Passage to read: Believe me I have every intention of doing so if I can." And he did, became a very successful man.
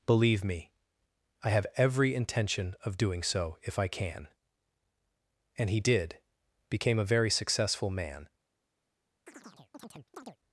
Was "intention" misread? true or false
false